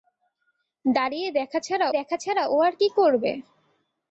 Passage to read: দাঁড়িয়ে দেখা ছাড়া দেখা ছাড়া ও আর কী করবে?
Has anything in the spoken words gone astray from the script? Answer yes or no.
no